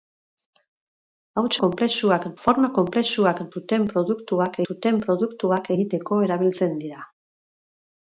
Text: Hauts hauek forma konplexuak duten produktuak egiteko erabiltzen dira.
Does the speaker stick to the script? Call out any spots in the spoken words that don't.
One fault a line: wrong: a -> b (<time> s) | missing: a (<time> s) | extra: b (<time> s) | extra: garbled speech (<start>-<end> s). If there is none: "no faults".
wrong: hauek -> konplexuak (1.6 s)
extra: duten produktuak (4.7 s)